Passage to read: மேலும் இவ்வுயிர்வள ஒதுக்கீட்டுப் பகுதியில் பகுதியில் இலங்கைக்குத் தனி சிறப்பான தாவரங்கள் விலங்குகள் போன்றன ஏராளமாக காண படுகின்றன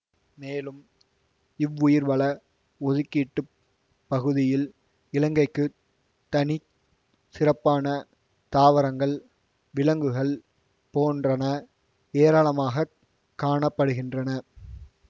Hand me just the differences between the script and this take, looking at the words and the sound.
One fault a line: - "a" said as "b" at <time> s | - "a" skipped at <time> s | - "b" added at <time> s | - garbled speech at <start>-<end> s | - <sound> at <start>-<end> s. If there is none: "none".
- "பகுதியில்" skipped at 4.6 s